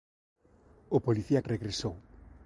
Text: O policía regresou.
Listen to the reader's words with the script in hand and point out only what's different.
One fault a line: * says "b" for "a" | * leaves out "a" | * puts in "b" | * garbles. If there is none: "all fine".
all fine